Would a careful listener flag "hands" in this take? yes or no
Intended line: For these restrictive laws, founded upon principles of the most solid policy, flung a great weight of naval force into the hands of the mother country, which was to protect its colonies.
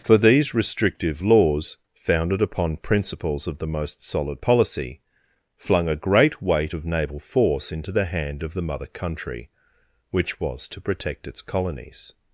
yes